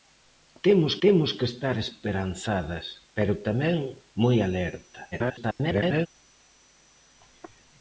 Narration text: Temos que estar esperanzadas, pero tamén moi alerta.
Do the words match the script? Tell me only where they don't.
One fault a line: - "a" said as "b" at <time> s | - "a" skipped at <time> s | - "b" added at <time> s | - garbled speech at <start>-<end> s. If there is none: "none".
- "temos" added at 1.0 s
- garbled speech at 5.1-6.1 s